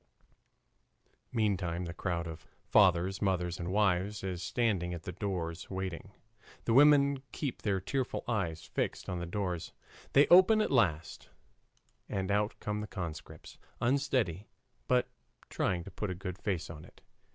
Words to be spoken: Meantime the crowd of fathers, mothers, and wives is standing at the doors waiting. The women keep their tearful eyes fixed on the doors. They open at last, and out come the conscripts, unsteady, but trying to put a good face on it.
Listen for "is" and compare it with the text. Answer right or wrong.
right